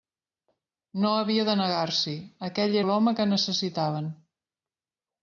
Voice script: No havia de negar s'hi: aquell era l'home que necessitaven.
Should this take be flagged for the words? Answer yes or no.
yes